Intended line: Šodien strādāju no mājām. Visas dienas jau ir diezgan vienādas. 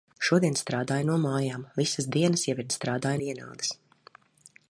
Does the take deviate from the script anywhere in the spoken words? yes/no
yes